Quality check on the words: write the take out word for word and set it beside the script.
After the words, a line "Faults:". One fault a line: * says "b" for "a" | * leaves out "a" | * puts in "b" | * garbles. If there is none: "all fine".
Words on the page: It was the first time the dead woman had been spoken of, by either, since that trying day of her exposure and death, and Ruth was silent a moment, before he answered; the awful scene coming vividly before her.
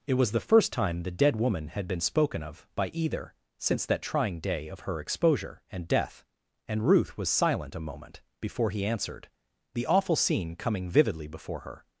It was the first time the dead woman had been spoken of, by either, since that trying day of her exposure and death, and Ruth was silent a moment, before he answered; the awful scene coming vividly before her.
Faults:
all fine